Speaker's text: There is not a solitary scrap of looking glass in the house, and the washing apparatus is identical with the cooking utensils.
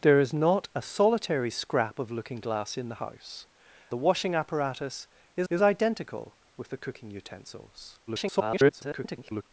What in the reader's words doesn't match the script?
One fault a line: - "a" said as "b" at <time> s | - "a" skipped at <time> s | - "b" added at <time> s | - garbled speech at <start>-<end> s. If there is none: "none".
- "and" skipped at 3.5 s
- "is" added at 5.5 s
- garbled speech at 8.1-9.4 s